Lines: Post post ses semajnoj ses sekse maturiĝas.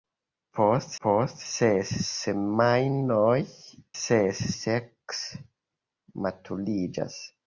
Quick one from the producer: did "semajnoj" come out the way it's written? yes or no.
yes